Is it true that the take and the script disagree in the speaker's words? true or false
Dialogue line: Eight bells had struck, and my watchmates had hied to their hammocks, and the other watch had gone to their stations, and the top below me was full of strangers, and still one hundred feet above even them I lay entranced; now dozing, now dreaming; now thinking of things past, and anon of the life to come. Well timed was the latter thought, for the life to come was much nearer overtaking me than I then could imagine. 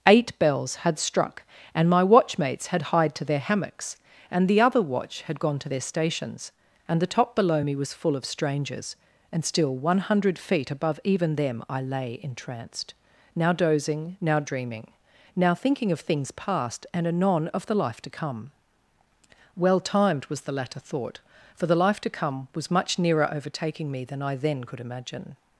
false